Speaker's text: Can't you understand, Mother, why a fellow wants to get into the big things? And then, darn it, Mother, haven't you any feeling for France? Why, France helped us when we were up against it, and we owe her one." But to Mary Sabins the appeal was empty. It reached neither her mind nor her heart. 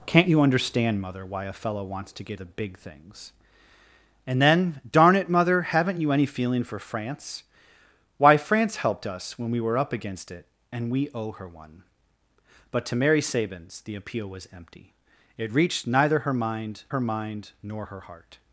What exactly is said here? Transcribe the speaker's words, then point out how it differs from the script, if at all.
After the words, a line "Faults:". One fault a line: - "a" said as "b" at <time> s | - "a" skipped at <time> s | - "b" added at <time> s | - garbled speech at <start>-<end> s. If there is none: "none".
Can't you understand, Mother, why a fellow wants to get the big things? And then, darn it, Mother, haven't you any feeling for France? Why, France helped us when we were up against it, and we owe her one." But to Mary Sabins the appeal was empty. It reached neither her mind her mind nor her heart.
Faults:
- "into" skipped at 2.4 s
- "her mind" added at 16.9 s